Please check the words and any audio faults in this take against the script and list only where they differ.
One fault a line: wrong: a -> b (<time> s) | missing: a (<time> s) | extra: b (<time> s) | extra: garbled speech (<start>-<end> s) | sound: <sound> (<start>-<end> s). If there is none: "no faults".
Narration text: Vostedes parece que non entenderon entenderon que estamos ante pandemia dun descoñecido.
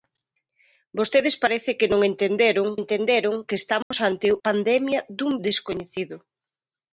sound: dropout (3.8-3.9 s)